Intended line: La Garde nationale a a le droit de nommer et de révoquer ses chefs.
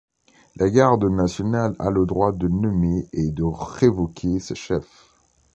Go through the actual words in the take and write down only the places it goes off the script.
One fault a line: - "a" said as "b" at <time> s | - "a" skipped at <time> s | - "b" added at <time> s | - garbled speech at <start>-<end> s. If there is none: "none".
- "a" skipped at 1.9 s